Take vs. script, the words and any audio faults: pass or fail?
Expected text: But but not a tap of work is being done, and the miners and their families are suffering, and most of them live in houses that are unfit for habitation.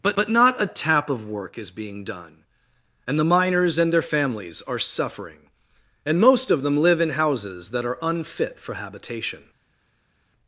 pass